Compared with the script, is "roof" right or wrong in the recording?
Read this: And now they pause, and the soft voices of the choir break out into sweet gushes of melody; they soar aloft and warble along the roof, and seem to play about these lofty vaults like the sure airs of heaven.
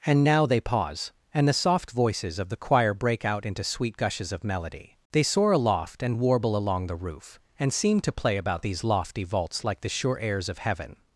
right